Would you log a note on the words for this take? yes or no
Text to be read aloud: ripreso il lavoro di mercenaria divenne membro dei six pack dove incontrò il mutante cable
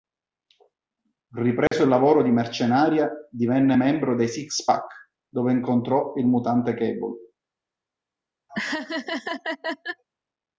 no